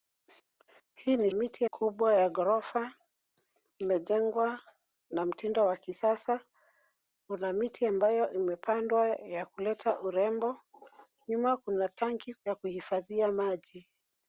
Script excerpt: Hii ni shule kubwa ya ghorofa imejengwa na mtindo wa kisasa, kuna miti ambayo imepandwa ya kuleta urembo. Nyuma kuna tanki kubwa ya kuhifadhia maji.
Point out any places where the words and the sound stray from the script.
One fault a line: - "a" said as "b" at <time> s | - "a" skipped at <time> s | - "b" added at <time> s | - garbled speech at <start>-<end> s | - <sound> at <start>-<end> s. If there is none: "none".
- "shule" said as "miti" at 1.3 s
- "kubwa" skipped at 12.3 s